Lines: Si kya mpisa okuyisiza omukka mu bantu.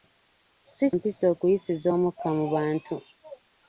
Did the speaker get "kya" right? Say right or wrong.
wrong